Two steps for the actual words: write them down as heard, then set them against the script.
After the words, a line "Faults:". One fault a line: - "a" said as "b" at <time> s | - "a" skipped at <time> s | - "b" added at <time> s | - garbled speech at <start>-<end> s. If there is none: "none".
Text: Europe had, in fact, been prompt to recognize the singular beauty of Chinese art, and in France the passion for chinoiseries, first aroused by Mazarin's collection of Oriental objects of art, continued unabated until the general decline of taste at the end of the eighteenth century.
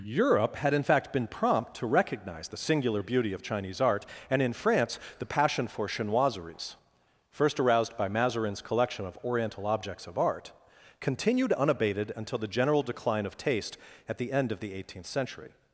Europe had, in fact, been prompt to recognize the singular beauty of Chinese art, and in France the passion for chinoiseries, first aroused by Mazarin's collection of Oriental objects of art, continued unabated until the general decline of taste at the end of the eighteenth century.
Faults:
none